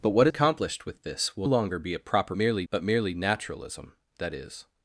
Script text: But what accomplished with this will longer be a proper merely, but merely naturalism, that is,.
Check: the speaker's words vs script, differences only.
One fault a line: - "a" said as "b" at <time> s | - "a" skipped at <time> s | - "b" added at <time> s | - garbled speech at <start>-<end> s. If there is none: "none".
none